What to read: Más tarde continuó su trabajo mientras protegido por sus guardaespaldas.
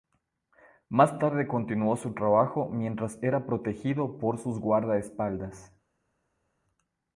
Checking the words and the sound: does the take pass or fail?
fail